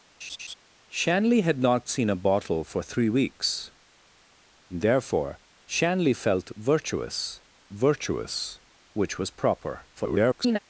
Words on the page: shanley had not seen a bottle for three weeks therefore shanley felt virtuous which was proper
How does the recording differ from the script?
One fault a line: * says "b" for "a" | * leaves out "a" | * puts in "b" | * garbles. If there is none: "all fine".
* puts in "virtuous"
* garbles